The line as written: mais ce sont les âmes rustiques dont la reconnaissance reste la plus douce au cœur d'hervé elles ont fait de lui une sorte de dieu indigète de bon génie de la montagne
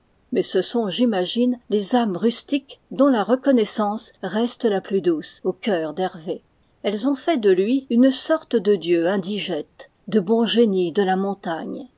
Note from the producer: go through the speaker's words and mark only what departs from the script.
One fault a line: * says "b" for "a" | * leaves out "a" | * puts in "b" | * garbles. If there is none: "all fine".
* puts in "j'imagine"